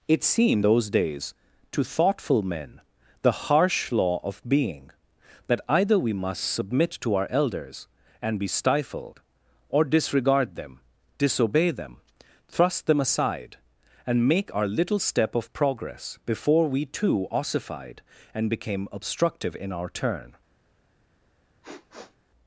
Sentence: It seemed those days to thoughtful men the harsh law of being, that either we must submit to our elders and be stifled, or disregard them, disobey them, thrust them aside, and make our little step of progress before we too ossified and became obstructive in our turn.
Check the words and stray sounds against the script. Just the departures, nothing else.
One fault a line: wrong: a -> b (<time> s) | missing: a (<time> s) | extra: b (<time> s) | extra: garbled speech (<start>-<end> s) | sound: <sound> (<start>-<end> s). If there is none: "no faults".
sound: sniff (21.6-22.2 s)